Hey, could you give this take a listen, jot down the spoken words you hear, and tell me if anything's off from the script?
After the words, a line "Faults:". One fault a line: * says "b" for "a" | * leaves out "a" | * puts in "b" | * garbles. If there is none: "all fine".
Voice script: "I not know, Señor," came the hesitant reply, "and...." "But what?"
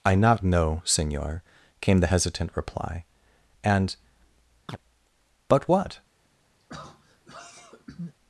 "I not know, Señor," came the hesitant reply, "and...." "But what?"
Faults:
all fine